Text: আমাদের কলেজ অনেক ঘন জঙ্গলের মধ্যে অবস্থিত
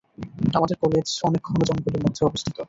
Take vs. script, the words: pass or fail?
pass